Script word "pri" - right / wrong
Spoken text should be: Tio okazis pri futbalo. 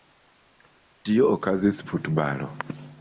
wrong